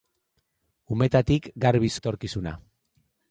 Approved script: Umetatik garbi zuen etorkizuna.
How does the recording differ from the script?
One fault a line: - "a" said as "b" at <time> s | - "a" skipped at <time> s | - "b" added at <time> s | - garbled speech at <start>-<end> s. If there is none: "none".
- "zuen" skipped at 1.9 s